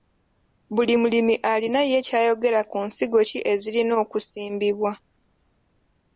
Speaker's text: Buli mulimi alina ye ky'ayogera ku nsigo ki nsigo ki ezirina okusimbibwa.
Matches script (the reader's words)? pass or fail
fail